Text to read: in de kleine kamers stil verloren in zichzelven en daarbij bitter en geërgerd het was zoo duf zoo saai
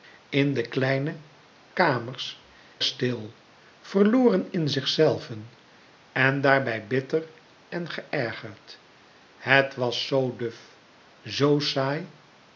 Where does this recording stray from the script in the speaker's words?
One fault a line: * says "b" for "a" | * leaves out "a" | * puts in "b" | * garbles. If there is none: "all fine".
all fine